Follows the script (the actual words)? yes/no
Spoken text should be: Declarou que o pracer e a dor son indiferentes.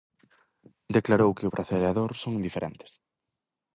yes